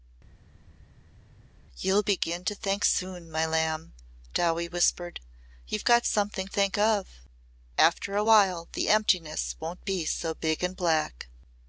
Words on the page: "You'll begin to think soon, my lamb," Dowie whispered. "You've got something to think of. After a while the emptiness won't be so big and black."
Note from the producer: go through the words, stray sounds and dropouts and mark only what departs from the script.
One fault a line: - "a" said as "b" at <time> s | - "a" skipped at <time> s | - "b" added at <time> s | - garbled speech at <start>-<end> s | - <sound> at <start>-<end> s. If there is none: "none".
- "to" skipped at 6.5 s